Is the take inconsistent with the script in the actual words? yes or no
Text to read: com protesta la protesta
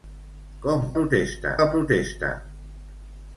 no